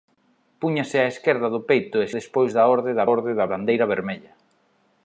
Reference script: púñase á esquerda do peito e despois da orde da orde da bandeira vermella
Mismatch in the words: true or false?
false